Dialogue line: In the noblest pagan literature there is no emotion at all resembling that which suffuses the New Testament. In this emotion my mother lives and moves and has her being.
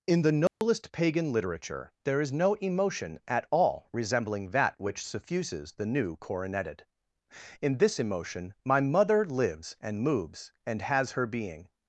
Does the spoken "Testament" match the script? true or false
false